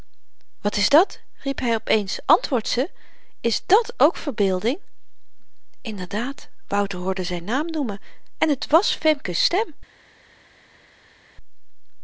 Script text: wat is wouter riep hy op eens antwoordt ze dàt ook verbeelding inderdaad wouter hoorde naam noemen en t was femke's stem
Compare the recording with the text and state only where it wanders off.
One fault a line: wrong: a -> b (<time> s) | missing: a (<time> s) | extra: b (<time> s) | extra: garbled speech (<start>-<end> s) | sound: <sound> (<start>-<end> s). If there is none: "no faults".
wrong: wouter -> dat (0.9 s)
extra: is (3.4 s)
extra: zyn (7.2 s)